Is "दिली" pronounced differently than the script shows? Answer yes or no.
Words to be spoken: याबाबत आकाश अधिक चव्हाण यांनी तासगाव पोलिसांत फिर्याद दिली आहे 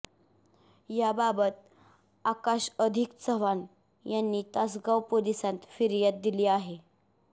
no